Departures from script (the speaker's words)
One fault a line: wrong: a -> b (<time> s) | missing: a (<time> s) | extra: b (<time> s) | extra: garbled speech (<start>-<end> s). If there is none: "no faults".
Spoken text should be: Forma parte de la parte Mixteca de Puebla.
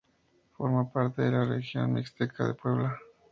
wrong: parte -> región (1.4 s)